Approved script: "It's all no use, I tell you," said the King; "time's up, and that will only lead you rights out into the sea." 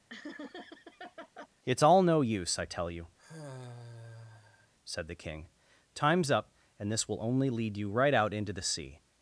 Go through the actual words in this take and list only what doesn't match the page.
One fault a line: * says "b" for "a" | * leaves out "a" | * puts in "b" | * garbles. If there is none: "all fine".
* says "this" for "that"
* says "right" for "rights"